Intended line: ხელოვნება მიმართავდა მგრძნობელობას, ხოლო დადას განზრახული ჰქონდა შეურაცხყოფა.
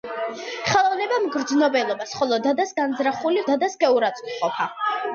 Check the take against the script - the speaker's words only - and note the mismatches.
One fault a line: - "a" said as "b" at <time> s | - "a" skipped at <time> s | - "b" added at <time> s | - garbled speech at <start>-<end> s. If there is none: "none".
- "მიმართავდა" skipped at 1.2 s
- "ჰქონდა" said as "დადას" at 3.5 s